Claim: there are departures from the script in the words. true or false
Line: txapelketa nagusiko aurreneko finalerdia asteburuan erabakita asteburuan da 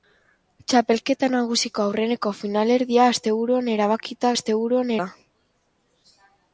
false